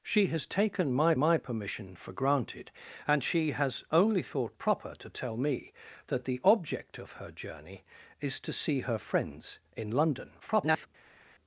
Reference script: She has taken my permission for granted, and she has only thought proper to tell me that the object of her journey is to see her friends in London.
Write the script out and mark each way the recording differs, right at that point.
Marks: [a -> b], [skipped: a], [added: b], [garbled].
She has taken my [added: my] permission for granted, and she has only thought proper to tell me that the object of her journey is to see her friends in London. [garbled]